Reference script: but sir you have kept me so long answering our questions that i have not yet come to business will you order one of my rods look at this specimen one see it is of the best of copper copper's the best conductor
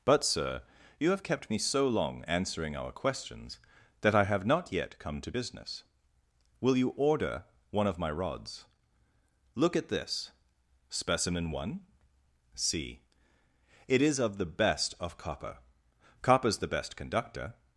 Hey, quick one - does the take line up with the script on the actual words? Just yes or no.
yes